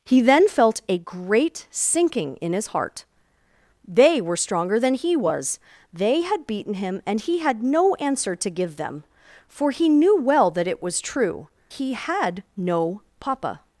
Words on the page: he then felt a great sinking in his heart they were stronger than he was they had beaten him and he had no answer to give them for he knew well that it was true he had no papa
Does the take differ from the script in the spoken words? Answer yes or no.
no